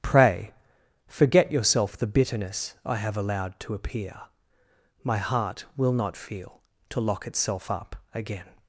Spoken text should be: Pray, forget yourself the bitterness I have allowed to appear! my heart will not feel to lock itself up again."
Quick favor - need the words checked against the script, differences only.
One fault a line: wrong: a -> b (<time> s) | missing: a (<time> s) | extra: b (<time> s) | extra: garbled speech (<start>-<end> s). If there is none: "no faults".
no faults